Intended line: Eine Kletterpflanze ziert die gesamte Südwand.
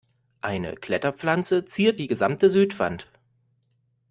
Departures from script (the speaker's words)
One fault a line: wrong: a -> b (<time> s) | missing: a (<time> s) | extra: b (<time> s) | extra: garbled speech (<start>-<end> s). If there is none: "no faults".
no faults